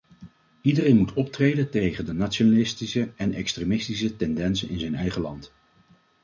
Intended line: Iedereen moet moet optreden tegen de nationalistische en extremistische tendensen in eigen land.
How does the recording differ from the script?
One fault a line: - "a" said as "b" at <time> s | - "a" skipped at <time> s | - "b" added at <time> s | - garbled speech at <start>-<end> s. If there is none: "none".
- "moet" skipped at 1.1 s
- "zijn" added at 4.8 s